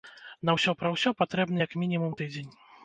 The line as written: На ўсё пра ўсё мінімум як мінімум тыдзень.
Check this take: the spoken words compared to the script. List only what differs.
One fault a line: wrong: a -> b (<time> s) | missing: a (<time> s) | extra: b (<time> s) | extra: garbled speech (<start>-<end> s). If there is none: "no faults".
wrong: мінімум -> патрэбны (1.2 s)